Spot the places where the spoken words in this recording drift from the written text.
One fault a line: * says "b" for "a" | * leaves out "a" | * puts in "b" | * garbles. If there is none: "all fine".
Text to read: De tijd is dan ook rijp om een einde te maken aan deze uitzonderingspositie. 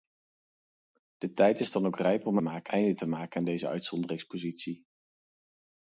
* says "maken" for "een"